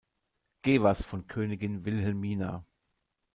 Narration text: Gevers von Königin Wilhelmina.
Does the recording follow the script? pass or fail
pass